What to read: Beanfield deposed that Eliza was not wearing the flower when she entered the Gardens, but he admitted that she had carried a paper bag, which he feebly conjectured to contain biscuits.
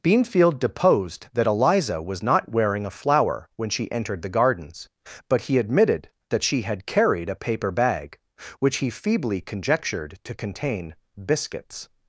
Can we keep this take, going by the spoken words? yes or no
no